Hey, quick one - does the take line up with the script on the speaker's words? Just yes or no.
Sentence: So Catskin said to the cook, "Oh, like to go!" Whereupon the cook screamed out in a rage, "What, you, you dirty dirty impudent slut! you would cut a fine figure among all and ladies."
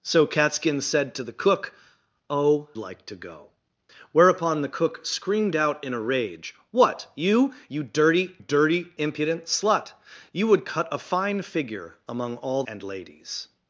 yes